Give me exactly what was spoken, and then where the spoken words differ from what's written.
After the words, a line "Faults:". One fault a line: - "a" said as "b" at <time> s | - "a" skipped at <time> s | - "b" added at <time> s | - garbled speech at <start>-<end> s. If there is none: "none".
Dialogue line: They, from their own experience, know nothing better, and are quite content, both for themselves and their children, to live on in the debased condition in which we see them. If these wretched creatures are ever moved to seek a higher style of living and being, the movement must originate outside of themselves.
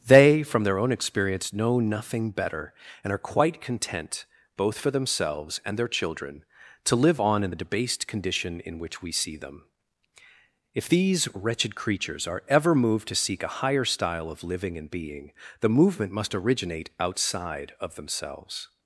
They, from their own experience, know nothing better, and are quite content, both for themselves and their children, to live on in the debased condition in which we see them. If these wretched creatures are ever moved to seek a higher style of living and being, the movement must originate outside of themselves.
Faults:
none